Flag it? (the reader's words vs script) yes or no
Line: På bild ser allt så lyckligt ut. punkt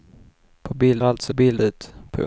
yes